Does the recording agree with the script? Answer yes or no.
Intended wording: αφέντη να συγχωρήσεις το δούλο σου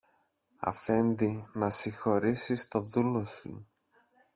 yes